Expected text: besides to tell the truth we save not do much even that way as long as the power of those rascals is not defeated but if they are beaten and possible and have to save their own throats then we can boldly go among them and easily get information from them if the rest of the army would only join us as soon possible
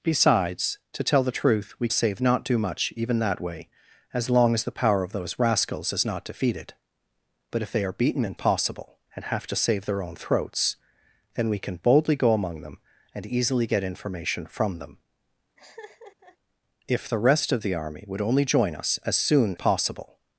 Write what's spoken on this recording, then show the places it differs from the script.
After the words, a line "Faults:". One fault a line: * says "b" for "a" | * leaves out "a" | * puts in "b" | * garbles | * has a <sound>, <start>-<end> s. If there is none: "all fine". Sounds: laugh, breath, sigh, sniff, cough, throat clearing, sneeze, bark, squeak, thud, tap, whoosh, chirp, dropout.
besides to tell the truth we save not do much even that way as long as the power of those rascals is not defeated but if they are beaten and possible and have to save their own throats then we can boldly go among them and easily get information from them if the rest of the army would only join us as soon possible
Faults:
* has a laugh, 15.6-16.4 s